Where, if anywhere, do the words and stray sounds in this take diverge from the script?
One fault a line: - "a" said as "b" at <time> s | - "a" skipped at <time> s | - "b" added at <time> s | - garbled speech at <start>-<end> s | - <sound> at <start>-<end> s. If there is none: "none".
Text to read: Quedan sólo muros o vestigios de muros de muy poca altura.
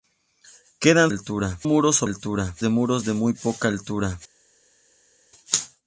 - "sólo" said as "altura" at 1.1 s
- "vestigios" said as "altura" at 2.0 s